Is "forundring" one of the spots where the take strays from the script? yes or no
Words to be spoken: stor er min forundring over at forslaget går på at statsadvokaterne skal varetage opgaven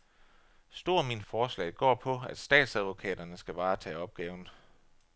yes